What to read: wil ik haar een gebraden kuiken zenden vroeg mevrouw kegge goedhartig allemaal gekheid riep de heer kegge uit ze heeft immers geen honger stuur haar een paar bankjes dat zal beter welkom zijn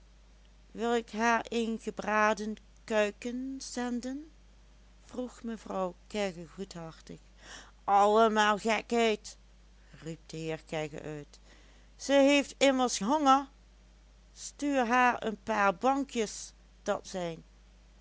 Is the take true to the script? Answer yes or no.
no